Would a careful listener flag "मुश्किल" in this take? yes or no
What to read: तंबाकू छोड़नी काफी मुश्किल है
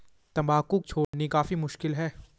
no